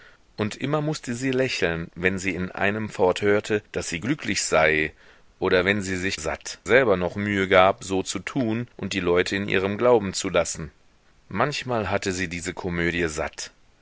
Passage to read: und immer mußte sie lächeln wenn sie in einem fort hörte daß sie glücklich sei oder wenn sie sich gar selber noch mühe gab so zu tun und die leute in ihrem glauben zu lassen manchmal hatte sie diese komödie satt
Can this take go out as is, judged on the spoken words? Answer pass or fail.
fail